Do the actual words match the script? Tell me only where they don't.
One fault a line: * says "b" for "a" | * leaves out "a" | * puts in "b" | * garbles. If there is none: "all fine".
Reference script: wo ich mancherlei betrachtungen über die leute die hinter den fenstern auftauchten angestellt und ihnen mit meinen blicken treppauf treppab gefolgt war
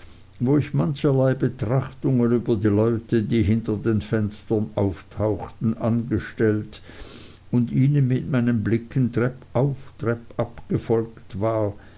all fine